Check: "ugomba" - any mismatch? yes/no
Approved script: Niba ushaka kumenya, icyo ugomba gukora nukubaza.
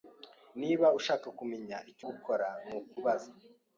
yes